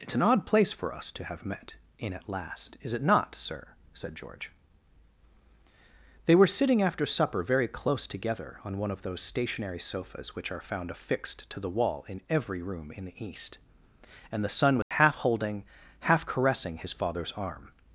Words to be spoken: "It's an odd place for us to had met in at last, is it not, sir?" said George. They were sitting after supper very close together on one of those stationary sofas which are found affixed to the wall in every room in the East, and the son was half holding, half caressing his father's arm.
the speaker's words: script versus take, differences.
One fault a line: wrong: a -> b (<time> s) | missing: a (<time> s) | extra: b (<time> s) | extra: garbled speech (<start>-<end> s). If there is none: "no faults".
wrong: had -> have (1.2 s)